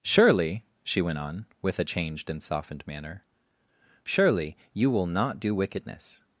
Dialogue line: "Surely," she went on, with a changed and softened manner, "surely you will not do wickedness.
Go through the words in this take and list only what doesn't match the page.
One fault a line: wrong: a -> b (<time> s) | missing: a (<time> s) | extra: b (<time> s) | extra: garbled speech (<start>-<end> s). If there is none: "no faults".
no faults